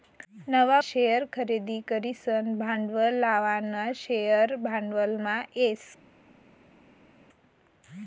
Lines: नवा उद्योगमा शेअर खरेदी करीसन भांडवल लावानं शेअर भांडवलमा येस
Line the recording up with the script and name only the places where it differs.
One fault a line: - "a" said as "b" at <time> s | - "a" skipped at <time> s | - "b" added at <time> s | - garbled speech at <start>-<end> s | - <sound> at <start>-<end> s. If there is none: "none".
- "उद्योगमा" skipped at 0.8 s